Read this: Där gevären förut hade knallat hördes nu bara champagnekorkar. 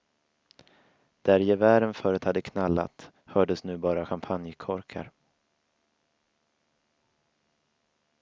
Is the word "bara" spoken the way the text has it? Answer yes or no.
yes